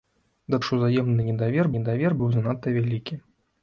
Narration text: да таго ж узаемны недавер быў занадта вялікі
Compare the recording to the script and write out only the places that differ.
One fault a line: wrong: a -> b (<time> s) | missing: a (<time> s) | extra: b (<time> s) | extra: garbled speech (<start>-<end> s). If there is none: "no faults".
missing: таго (0.6 s)
extra: недавер (1.8 s)